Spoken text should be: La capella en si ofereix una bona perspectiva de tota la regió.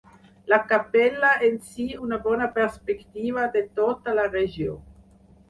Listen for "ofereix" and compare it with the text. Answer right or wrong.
wrong